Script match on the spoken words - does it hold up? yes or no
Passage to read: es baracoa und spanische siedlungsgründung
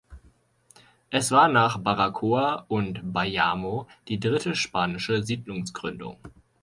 no